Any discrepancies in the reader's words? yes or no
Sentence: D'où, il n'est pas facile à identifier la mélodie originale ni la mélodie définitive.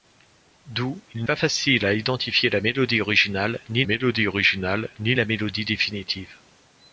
yes